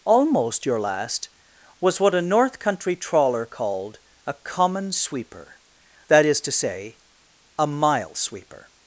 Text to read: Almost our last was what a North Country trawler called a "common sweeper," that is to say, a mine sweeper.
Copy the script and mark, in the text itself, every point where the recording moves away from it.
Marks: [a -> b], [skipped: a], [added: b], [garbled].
Almost [our -> your] last was what a North Country trawler called a "common sweeper," that is to say, a [mine -> mile] sweeper.